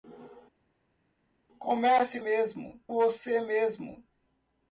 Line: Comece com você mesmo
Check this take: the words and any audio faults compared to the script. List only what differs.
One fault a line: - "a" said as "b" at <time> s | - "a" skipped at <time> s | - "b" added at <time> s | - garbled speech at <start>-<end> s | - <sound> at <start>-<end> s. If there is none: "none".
- "com" said as "mesmo" at 2.2 s